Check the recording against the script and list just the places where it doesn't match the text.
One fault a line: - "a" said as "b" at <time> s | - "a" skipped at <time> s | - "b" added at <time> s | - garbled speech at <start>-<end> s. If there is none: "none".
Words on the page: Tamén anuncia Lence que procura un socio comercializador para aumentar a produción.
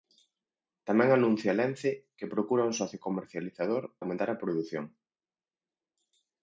- "para" skipped at 3.8 s